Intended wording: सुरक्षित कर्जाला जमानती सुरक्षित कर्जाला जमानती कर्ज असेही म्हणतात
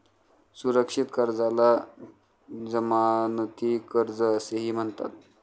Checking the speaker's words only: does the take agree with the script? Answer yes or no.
no